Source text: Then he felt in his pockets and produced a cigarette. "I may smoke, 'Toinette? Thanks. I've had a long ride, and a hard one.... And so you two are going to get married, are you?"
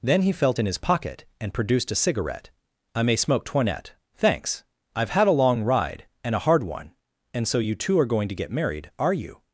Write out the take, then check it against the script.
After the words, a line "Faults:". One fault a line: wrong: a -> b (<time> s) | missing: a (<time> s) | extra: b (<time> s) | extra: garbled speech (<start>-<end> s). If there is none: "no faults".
Then he felt in his pocket and produced a cigarette. "I may smoke, 'Toinette? Thanks. I've had a long ride, and a hard one.... And so you two are going to get married, are you?"
Faults:
wrong: pockets -> pocket (0.8 s)